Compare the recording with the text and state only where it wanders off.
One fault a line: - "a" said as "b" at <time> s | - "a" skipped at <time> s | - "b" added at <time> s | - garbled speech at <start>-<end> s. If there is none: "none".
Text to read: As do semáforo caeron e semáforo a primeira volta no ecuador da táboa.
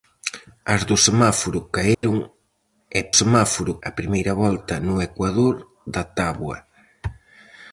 none